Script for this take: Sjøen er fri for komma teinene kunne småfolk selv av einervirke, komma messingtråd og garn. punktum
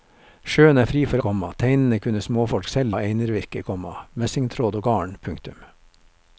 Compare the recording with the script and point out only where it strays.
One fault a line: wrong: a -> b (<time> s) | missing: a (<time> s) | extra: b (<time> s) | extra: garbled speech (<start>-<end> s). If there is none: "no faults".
no faults